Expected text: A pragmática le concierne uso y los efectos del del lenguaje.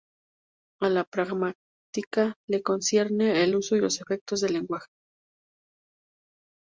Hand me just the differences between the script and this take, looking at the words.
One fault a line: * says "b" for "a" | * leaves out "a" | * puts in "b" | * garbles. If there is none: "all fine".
* puts in "la"
* puts in "el"
* leaves out "del"